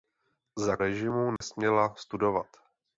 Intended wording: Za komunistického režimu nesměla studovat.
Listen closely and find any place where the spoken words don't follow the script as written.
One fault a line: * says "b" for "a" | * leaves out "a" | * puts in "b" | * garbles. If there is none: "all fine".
* leaves out "komunistického"